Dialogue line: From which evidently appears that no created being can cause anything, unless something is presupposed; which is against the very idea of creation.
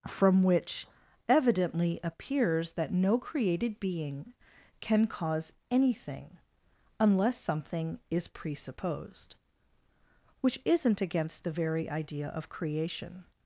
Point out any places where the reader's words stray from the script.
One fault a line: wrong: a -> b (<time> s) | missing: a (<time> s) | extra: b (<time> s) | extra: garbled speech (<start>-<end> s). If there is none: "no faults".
wrong: is -> isn't (10.7 s)